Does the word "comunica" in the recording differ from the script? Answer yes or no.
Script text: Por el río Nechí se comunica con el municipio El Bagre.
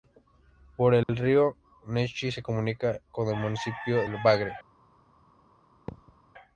no